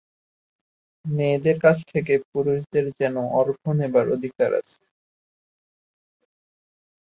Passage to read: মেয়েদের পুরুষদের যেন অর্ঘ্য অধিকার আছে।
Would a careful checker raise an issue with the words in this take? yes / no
yes